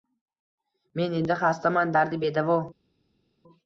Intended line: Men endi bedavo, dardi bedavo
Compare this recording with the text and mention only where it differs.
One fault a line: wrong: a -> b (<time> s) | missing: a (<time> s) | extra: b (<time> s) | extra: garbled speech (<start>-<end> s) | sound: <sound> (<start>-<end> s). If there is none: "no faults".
wrong: bedavo -> xastaman (1.4 s)